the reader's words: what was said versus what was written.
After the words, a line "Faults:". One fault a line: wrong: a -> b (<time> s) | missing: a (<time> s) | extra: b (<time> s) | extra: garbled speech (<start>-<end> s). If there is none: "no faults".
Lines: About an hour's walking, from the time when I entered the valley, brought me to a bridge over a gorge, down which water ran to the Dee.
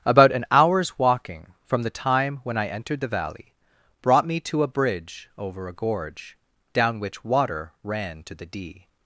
About an hour's walking, from the time when I entered the valley, brought me to a bridge over a gorge, down which water ran to the Dee.
Faults:
no faults